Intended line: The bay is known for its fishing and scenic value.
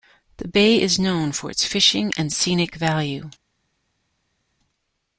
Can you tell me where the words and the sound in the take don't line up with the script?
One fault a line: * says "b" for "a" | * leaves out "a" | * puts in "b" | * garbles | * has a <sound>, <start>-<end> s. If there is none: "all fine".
all fine